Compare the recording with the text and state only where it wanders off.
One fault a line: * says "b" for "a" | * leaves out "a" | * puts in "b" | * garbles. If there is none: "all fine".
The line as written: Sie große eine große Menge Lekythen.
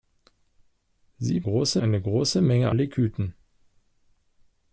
all fine